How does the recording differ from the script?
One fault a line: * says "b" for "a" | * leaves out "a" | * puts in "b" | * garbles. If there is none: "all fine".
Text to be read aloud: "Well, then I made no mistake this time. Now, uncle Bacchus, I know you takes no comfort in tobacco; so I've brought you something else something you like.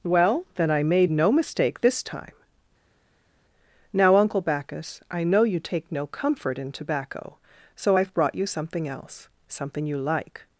* says "take" for "takes"